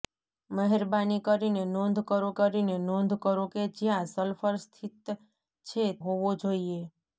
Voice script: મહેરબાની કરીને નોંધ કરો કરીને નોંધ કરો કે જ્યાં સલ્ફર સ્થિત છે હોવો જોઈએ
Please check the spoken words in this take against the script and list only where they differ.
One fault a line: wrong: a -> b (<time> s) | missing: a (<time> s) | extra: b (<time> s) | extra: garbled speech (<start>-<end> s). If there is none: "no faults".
no faults